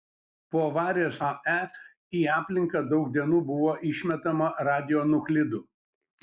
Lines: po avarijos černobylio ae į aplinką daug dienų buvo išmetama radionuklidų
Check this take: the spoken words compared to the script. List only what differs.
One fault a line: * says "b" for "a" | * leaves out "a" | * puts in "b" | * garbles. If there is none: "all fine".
* leaves out "černobylio"